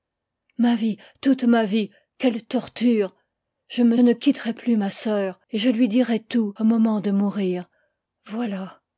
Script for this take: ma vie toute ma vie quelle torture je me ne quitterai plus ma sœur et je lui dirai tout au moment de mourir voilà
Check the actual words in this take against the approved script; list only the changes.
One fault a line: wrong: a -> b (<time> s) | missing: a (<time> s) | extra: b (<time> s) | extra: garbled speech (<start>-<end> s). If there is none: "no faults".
no faults